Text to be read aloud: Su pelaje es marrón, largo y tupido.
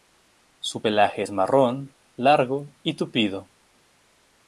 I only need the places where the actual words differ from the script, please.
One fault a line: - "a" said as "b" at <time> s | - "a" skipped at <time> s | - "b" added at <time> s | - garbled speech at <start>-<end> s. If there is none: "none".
none